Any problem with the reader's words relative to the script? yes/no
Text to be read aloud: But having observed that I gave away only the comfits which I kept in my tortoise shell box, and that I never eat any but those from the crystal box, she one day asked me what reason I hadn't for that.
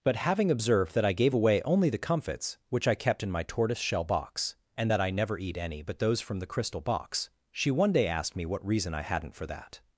no